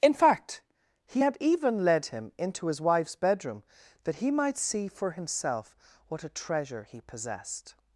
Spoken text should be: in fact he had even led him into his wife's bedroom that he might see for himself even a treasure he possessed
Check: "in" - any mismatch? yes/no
no